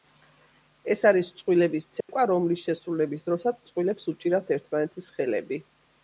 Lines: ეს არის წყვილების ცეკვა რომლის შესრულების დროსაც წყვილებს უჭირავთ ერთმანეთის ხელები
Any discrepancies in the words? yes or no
no